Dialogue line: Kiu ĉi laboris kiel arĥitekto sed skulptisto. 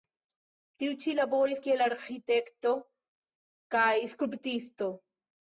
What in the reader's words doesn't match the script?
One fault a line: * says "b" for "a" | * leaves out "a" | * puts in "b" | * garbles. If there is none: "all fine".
* says "Tiu" for "Kiu"
* says "kaj" for "sed"